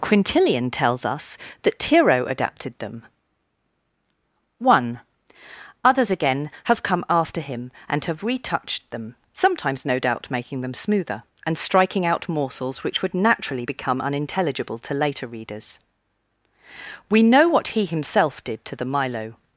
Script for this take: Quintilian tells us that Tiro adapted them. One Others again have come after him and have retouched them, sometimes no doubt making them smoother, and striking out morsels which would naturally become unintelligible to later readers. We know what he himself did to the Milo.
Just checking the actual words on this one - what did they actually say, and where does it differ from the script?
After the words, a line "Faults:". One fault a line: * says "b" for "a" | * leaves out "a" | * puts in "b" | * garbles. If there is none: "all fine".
Quintilian tells us that Tiro adapted them. One Others again have come after him and have retouched them, sometimes no doubt making them smoother, and striking out morsels which would naturally become unintelligible to later readers. We know what he himself did to the Milo.
Faults:
all fine